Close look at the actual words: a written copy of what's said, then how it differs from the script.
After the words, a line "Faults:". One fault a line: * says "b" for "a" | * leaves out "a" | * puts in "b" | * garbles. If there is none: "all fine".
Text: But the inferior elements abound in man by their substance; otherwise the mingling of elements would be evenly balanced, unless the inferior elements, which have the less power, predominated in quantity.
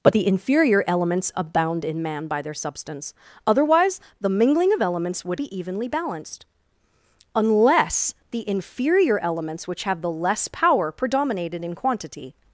But the inferior elements abound in man by their substance; otherwise the mingling of elements would be evenly balanced, unless the inferior elements, which have the less power, predominated in quantity.
Faults:
all fine